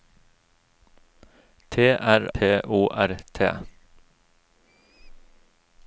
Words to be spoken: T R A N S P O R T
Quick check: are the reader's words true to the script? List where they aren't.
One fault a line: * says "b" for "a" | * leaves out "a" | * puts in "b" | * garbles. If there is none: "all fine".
* leaves out "A N S"